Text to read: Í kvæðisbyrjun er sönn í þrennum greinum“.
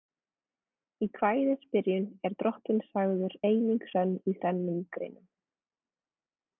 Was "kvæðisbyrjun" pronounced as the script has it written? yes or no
yes